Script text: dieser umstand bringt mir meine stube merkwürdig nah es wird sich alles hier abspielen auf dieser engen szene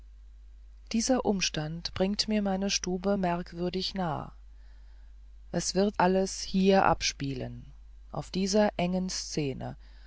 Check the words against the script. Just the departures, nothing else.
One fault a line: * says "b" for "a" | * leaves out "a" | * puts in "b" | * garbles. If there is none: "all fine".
* leaves out "sich"